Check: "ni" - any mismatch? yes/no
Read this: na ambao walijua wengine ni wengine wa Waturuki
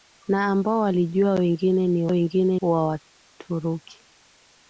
no